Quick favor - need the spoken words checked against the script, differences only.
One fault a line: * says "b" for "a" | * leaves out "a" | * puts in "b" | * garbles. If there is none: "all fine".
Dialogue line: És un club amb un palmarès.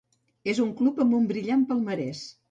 * puts in "brillant"